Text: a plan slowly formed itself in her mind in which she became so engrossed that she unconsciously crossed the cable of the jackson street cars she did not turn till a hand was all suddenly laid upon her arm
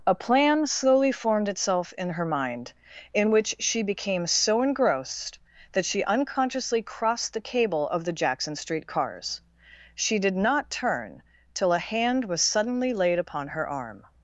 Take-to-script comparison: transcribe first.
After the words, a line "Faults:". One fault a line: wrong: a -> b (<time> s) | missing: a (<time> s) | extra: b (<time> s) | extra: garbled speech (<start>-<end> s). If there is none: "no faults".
a plan slowly formed itself in her mind in which she became so engrossed that she unconsciously crossed the cable of the jackson street cars she did not turn till a hand was suddenly laid upon her arm
Faults:
missing: all (12.4 s)